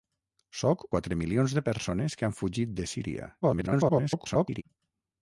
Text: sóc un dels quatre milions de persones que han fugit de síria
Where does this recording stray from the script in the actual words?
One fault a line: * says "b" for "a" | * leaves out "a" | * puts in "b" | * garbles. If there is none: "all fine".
* leaves out "un dels"
* garbles